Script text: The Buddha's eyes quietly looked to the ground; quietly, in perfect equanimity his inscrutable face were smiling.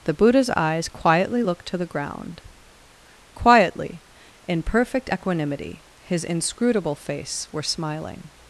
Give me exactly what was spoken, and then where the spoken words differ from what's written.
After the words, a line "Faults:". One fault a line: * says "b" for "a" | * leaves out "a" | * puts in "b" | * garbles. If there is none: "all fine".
The Buddha's eyes quietly looked to the ground; quietly, in perfect equanimity his inscrutable face were smiling.
Faults:
all fine